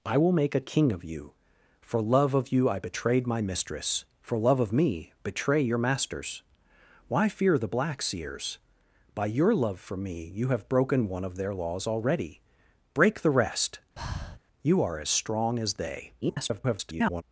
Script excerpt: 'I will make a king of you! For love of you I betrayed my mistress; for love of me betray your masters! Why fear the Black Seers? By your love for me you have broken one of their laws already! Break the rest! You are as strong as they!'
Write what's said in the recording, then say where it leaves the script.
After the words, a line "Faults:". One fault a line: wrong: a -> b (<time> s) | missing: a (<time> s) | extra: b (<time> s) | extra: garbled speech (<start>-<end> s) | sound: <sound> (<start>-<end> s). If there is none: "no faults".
'I will make a king of you! For love of you I betrayed my mistress; for love of me betray your masters! Why fear the Black Seers? By your love for me you have broken one of their laws already! Break the rest! You are as strong as they!' [garbled]
Faults:
sound: breath (14.0-14.4 s)
extra: garbled speech (16.2-17.2 s)